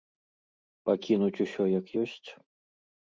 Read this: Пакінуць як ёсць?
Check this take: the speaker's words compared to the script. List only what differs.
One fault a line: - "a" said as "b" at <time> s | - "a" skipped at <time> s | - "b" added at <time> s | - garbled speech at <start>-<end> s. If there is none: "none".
- "усё" added at 1.4 s